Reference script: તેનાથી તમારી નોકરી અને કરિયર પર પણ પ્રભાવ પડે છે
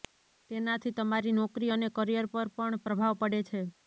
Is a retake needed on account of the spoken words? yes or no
no